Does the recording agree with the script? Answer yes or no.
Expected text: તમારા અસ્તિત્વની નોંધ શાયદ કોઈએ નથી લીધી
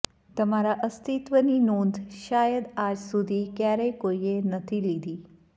no